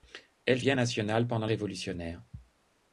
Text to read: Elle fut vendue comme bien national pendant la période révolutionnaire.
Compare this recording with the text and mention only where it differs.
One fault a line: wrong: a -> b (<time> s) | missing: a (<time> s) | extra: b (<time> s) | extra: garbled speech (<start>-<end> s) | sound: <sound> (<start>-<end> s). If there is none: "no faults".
missing: fut vendue comme (0.6 s)
missing: la période (1.5 s)